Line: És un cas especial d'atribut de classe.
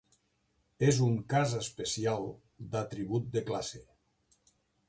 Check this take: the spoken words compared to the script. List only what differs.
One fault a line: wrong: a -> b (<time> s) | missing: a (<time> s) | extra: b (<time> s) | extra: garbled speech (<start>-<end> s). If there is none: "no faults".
no faults